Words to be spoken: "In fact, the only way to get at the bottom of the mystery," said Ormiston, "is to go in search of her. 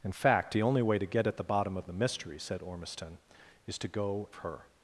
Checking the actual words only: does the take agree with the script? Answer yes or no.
no